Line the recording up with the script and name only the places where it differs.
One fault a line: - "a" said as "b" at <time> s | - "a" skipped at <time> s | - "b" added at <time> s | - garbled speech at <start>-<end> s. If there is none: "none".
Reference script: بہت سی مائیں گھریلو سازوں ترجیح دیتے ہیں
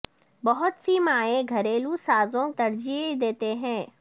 none